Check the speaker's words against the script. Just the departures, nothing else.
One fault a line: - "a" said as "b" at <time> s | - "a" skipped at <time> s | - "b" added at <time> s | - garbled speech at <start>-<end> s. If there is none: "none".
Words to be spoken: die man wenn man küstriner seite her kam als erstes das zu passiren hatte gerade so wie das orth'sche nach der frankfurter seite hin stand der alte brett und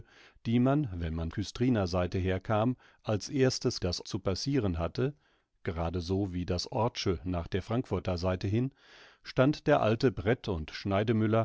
none